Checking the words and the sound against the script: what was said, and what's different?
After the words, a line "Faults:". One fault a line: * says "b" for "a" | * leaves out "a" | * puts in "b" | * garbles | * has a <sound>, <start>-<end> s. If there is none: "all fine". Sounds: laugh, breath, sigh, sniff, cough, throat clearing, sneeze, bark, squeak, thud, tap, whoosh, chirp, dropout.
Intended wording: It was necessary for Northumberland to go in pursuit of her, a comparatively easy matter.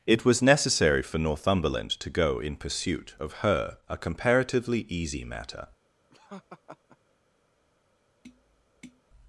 It was necessary for Northumberland to go in pursuit of her, a comparatively easy matter.
Faults:
* has a laugh, 6.1-7.0 s
* has a tap, 8.2-9.0 s